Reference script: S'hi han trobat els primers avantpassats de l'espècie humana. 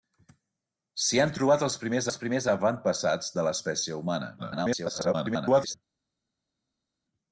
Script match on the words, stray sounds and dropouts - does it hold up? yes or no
no